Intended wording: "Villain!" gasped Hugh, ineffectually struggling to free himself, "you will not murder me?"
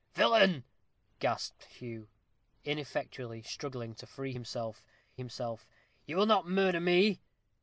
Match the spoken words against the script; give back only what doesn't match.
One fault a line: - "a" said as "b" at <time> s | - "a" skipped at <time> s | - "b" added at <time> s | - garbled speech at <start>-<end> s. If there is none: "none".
- "himself" added at 5.2 s